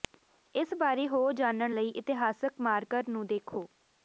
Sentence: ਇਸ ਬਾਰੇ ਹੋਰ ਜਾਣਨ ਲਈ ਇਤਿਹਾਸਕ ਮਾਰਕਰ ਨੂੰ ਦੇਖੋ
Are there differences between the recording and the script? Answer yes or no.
no